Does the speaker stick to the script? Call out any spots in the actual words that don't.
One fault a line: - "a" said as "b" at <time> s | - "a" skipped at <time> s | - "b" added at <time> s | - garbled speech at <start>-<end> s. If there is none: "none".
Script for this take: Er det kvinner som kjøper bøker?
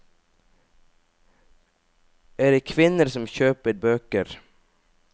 none